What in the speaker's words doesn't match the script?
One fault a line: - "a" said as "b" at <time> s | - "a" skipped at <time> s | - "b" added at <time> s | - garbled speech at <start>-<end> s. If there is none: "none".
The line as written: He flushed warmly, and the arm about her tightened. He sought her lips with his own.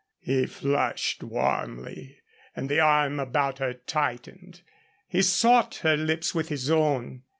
none